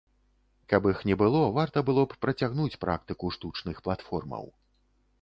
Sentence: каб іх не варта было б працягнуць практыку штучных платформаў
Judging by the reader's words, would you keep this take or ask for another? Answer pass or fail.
fail